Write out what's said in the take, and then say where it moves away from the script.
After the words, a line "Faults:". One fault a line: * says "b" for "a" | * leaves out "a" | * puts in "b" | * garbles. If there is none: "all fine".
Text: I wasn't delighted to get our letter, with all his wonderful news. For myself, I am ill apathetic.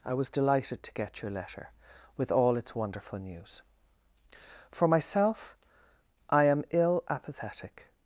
I was delighted to get your letter, with all its wonderful news. For myself, I am ill apathetic.
Faults:
* says "was" for "wasn't"
* says "your" for "our"
* says "its" for "his"